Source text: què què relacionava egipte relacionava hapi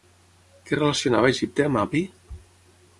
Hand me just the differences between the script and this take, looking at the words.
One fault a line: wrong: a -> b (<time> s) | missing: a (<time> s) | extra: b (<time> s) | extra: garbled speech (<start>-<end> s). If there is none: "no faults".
missing: què (0.8 s)
wrong: relacionava -> amb (1.7 s)